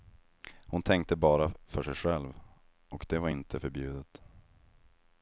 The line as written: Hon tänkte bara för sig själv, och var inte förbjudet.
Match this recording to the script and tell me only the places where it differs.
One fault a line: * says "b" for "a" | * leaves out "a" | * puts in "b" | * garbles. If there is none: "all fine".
* puts in "det"